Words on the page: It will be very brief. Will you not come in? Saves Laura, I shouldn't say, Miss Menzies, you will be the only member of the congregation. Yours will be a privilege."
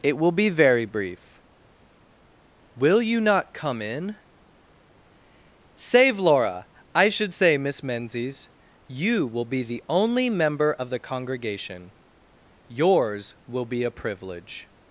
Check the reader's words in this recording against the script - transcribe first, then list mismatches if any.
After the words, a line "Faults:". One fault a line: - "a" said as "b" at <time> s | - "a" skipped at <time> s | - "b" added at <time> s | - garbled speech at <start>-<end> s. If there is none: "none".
It will be very brief. Will you not come in? Save Laura, I should say, Miss Menzies, you will be the only member of the congregation. Yours will be a privilege."
Faults:
- "Saves" said as "Save" at 5.8 s
- "shouldn't" said as "should" at 7.1 s